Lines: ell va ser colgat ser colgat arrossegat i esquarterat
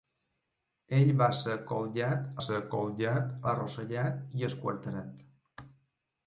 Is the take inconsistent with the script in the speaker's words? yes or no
no